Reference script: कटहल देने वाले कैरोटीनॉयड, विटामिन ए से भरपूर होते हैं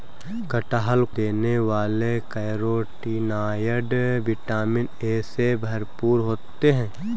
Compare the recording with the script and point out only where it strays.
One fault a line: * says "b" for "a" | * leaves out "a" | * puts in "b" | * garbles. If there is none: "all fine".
all fine